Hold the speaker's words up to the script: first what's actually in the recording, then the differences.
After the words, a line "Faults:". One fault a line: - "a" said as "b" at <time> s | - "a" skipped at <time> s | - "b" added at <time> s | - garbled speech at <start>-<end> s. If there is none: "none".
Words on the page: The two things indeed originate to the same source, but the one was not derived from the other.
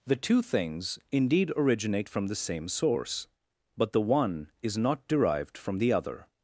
The two things indeed originate from the same source, but the one is not derived from the other.
Faults:
- "to" said as "from" at 2.1 s
- "was" said as "is" at 4.6 s